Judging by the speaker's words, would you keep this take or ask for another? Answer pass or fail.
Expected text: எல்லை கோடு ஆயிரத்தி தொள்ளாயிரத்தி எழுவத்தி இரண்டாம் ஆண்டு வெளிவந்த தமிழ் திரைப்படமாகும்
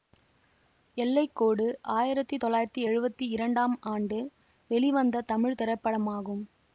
pass